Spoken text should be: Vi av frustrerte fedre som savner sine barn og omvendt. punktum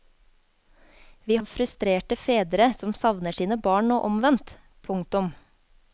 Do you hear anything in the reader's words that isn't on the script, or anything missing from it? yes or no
no